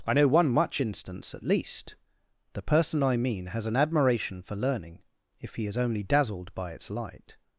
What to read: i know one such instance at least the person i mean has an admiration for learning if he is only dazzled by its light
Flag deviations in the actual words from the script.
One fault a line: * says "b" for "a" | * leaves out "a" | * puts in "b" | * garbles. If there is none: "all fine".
* says "much" for "such"